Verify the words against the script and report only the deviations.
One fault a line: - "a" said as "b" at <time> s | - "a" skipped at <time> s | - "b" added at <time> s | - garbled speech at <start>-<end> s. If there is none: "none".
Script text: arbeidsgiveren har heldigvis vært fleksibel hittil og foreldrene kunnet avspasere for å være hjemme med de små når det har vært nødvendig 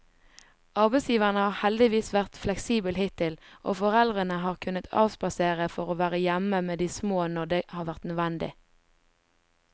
- "har" added at 4.5 s